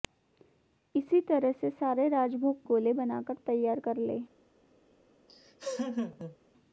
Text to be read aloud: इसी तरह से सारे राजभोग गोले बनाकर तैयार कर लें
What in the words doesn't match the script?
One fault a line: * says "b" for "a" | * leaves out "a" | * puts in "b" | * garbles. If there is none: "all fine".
all fine